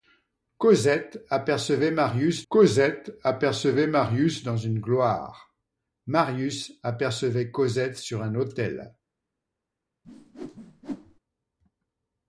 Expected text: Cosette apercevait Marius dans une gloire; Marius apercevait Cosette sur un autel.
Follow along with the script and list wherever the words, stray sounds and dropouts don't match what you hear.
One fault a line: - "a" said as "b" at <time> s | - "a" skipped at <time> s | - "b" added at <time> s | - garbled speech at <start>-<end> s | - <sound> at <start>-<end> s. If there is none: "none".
- "cosette apercevait Marius" added at 2.5 s
- whoosh at 10.0-11.2 s